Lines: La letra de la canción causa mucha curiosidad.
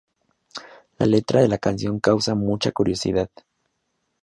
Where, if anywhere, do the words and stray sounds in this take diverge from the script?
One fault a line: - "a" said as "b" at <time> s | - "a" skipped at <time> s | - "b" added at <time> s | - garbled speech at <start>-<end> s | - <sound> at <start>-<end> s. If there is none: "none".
none